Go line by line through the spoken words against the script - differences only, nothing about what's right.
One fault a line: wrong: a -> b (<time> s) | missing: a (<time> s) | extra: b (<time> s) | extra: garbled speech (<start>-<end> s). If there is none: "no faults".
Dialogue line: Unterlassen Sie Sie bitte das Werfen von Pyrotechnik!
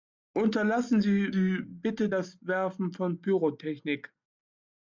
no faults